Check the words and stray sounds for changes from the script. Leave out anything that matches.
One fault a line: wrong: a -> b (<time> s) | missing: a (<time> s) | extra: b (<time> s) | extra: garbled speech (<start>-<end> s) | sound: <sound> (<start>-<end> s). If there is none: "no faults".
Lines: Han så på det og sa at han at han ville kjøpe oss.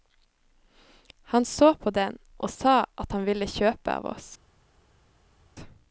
wrong: det -> den (1.9 s)
missing: at han (3.3 s)
extra: av (4.0 s)